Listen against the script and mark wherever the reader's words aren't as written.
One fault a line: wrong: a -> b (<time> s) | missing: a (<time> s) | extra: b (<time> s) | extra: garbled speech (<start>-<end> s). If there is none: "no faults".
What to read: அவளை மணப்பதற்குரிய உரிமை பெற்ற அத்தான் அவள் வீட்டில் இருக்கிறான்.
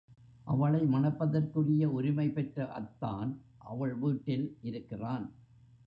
no faults